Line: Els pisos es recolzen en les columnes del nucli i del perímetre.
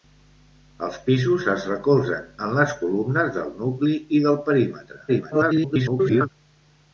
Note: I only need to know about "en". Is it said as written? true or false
true